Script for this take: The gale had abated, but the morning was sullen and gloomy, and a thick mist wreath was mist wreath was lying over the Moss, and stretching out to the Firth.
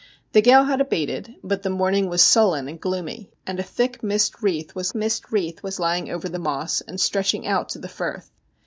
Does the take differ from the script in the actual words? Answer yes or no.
no